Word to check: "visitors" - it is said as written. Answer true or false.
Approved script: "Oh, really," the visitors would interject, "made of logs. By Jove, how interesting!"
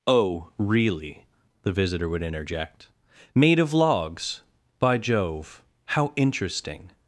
false